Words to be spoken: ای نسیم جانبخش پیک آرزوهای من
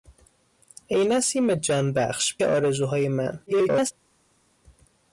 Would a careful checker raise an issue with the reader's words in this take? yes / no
yes